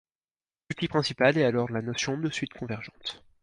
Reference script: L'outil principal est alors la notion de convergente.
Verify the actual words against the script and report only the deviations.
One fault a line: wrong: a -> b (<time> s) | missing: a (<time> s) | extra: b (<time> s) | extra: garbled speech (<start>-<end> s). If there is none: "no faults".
extra: suite (2.3 s)